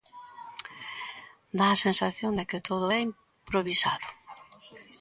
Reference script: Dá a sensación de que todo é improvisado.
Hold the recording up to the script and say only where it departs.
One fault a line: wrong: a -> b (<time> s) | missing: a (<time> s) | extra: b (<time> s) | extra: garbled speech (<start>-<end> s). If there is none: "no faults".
no faults